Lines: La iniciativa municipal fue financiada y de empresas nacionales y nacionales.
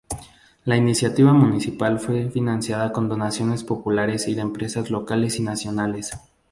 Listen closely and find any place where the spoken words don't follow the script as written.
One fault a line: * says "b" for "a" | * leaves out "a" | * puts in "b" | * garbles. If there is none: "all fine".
* puts in "con donaciones populares"
* says "locales" for "nacionales"